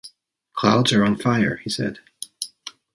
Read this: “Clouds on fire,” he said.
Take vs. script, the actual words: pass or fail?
fail